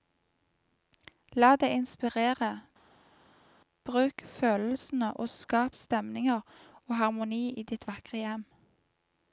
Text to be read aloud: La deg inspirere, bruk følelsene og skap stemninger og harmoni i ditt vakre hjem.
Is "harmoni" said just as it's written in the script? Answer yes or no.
yes